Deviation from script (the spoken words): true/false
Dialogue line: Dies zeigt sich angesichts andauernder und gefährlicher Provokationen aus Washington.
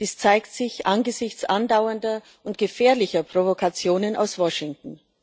false